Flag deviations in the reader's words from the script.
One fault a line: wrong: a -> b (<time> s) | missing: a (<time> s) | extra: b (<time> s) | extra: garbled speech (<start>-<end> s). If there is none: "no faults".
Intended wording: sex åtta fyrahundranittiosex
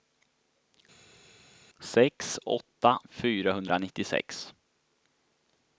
no faults